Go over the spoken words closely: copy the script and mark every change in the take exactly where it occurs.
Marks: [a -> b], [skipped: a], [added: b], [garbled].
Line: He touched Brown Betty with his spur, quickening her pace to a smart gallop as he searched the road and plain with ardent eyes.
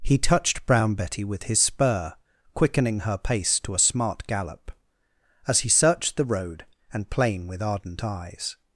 He touched Brown Betty with his spur, quickening her pace to a smart gallop as he searched the road and plain with ardent eyes.